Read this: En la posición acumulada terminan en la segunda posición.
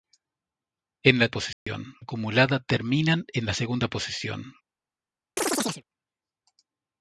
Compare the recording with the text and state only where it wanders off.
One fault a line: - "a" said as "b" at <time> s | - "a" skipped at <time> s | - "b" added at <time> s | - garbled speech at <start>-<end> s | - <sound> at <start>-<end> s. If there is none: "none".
- dropout at 1.5-1.7 s
- chirp at 5.4-5.8 s